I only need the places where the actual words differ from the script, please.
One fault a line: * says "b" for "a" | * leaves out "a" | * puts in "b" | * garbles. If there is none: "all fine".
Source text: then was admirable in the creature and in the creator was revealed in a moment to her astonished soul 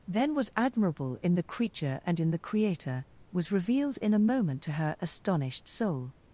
all fine